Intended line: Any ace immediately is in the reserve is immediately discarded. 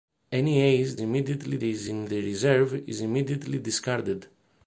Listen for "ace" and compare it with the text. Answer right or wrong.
right